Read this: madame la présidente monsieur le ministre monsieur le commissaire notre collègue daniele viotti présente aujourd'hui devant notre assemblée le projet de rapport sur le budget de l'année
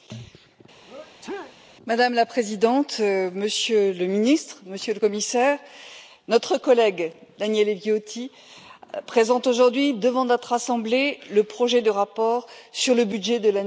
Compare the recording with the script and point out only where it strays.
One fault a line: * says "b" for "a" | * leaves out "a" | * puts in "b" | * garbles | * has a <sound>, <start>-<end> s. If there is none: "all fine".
* has a sneeze, 0.9-1.6 s